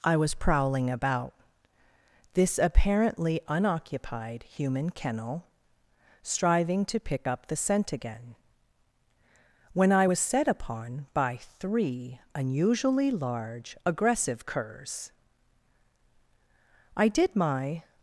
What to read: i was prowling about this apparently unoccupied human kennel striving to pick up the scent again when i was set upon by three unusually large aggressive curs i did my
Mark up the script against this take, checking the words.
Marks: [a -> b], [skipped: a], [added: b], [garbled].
i was prowling about this apparently unoccupied human kennel striving to pick up the scent again when i was set upon by three unusually large aggressive curs i did my